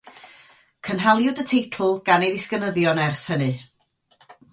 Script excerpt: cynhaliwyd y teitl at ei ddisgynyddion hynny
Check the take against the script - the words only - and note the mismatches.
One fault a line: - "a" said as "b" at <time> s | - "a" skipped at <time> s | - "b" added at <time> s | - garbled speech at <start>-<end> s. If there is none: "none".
- "at" said as "gan" at 2.1 s
- "ers" added at 3.0 s